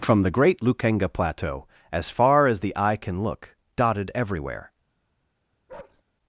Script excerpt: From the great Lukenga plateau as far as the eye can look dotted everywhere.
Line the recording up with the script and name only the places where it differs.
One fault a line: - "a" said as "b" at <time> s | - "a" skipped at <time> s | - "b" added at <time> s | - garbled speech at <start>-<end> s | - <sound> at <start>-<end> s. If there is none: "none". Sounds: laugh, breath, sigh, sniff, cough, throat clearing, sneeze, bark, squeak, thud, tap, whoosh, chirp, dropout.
- bark at 5.7-6.0 s